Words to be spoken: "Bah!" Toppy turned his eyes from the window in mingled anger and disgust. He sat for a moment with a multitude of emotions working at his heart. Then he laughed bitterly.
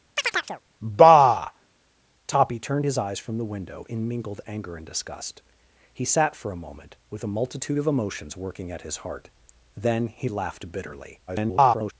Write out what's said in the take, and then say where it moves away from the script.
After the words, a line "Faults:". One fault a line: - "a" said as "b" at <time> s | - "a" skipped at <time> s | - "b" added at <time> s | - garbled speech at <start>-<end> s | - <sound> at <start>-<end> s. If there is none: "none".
"Bah!" Toppy turned his eyes from the window in mingled anger and disgust. He sat for a moment with a multitude of emotions working at his heart. Then he laughed bitterly. [garbled]
Faults:
- chirp at 0.2-0.6 s
- garbled speech at 11.3-11.9 s